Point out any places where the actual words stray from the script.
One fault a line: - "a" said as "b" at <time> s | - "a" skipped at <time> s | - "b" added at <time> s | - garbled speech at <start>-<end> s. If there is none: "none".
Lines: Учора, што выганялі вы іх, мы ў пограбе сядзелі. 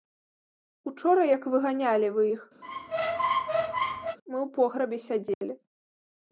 - "што" said as "як" at 1.3 s